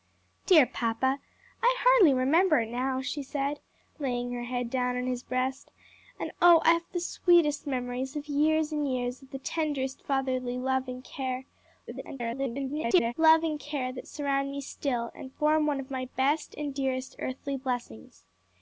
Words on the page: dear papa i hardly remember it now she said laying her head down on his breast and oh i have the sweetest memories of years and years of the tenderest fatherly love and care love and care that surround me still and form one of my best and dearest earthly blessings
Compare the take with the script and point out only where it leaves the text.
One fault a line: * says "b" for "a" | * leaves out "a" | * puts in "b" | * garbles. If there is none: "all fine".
* garbles